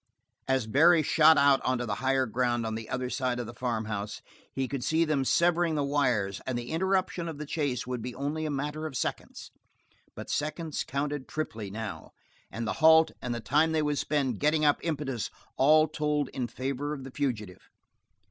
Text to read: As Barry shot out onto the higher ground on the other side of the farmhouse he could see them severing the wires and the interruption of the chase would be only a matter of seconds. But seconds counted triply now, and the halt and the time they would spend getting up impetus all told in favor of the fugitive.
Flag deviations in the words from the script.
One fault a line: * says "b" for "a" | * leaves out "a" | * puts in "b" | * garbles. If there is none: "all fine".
all fine